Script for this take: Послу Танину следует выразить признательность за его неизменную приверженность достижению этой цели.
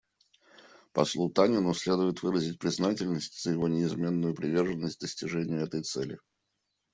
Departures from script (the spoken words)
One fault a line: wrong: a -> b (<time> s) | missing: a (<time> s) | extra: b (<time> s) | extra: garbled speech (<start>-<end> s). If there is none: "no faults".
no faults